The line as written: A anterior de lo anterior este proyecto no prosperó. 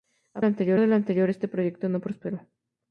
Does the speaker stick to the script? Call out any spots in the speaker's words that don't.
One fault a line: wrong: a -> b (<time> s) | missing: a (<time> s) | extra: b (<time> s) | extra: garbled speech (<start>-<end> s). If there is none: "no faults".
no faults